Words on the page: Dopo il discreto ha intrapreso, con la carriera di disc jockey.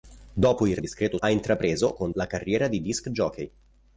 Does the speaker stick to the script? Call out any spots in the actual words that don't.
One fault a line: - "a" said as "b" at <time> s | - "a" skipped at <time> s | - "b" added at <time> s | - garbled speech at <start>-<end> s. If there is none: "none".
none